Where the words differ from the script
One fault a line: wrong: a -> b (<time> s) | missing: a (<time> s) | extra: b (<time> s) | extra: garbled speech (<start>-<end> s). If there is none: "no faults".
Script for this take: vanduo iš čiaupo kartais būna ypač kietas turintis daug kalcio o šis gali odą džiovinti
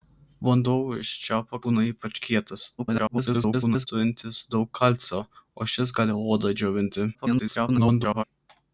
missing: kartais (1.6 s)
extra: garbled speech (2.8-3.9 s)
extra: garbled speech (7.1-8.2 s)